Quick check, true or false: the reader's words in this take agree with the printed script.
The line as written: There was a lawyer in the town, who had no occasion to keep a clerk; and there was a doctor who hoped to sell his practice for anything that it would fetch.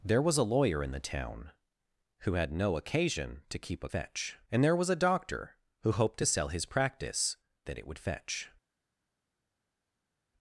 false